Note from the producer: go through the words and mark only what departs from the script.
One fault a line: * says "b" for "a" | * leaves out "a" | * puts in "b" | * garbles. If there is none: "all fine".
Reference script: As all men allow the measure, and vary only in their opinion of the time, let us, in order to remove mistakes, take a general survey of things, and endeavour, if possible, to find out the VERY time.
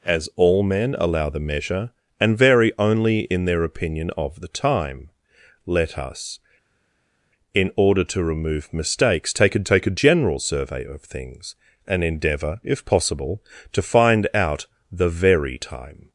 * puts in "take a"